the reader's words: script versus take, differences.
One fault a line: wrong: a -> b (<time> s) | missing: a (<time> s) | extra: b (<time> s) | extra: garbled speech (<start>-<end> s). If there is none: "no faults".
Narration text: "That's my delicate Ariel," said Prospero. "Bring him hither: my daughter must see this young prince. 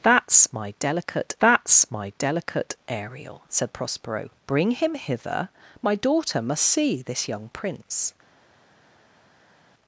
extra: that's my delicate (1.4 s)